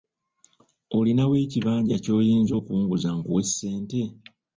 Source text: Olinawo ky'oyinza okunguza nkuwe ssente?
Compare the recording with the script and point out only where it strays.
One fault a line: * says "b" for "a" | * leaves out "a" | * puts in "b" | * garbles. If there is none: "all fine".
* puts in "ekibanja"